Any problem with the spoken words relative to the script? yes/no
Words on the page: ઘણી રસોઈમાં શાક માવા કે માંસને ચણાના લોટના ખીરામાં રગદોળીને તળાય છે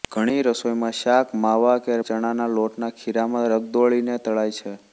yes